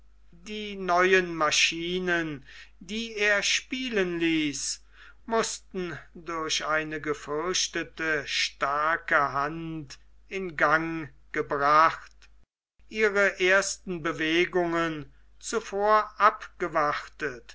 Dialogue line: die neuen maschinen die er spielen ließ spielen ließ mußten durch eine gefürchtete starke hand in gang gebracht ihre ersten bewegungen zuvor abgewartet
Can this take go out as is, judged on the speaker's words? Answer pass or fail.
fail